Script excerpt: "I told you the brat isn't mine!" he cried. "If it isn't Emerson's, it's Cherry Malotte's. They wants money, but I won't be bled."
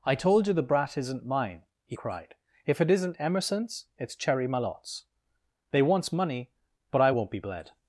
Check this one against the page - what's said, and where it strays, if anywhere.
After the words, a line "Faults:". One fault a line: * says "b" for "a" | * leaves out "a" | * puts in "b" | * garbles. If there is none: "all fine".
"I told you the brat isn't mine!" he cried. "If it isn't Emerson's, it's Cherry Malotte's. They wants money, but I won't be bled."
Faults:
all fine